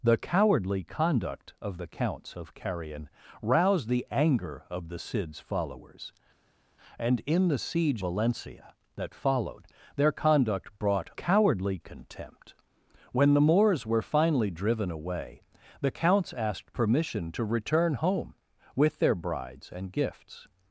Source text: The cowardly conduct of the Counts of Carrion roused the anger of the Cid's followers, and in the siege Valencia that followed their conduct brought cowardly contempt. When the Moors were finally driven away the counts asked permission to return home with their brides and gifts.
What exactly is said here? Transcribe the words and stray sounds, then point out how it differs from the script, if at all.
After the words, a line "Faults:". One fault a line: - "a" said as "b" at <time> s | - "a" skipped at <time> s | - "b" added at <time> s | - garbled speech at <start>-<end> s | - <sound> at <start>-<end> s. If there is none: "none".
The cowardly conduct of the Counts of Carrion roused the anger of the Cid's followers, and in the siege Valencia that followed their conduct brought cowardly contempt. When the Moors were finally driven away the counts asked permission to return home with their brides and gifts.
Faults:
none